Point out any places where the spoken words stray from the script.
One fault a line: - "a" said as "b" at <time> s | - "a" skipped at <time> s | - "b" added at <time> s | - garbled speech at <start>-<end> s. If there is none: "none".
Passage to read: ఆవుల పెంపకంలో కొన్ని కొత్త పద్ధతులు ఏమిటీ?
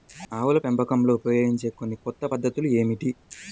- "ఉపయోగించే" added at 1.1 s